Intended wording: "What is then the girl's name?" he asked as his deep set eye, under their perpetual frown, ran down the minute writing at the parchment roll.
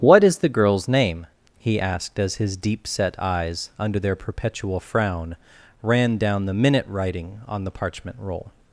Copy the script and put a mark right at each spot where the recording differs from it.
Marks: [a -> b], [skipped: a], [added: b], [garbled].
"What is [skipped: then] the girl's name?" he asked as his deep set [eye, -> eyes] under their perpetual frown, ran down the minute writing [at -> on] the parchment roll.